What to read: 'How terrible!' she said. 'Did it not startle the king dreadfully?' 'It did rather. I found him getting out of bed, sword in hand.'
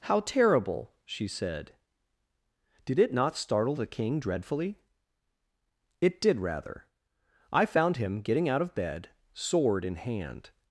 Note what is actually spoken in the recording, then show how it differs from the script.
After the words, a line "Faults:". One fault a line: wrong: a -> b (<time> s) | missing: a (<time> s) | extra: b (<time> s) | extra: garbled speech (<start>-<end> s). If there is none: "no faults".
'How terrible!' she said. 'Did it not startle the king dreadfully?' 'It did rather. I found him getting out of bed, sword in hand.'
Faults:
no faults